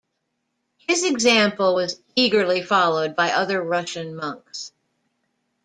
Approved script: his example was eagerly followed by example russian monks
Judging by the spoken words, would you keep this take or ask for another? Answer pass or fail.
fail